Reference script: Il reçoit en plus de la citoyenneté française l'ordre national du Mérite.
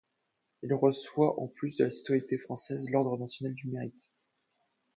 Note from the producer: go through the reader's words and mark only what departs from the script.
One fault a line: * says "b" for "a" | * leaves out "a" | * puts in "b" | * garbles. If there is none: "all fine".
all fine